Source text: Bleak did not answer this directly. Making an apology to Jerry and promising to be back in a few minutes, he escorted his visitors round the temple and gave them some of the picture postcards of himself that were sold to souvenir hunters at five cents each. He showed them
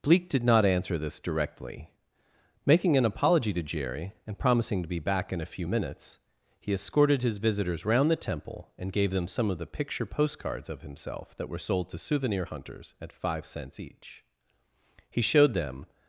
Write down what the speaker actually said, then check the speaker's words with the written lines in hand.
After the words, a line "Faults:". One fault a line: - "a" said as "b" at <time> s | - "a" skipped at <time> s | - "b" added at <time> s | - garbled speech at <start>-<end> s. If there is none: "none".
Bleak did not answer this directly. Making an apology to Jerry and promising to be back in a few minutes, he escorted his visitors round the temple and gave them some of the picture postcards of himself that were sold to souvenir hunters at five cents each. He showed them
Faults:
none